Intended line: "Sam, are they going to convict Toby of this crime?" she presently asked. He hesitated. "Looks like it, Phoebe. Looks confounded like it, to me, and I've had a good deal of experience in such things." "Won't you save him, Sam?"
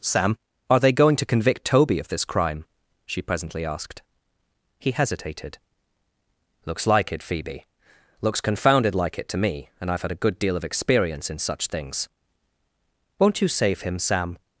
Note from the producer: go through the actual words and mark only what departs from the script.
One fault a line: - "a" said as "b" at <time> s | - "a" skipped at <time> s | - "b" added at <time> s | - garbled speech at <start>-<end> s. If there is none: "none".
none